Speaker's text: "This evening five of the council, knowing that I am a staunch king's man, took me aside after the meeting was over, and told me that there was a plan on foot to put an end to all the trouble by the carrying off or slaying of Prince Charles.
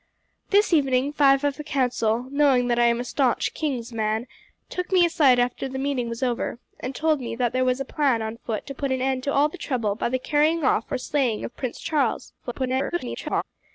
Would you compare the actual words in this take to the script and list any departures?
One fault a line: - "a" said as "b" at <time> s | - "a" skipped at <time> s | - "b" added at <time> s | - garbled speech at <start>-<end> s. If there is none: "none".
- garbled speech at 12.4-13.4 s